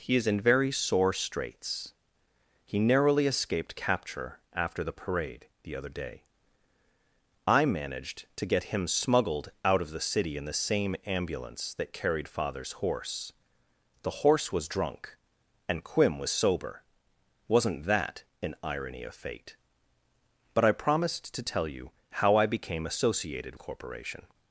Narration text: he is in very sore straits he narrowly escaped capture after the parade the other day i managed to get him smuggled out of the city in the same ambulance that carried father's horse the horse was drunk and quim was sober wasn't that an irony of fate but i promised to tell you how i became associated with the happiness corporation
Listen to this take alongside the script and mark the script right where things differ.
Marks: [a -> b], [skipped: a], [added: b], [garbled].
he is in very sore straits he narrowly escaped capture after the parade the other day i managed to get him smuggled out of the city in the same ambulance that carried father's horse the horse was drunk and quim was sober wasn't that an irony of fate but i promised to tell you how i became associated [skipped: with the happiness] corporation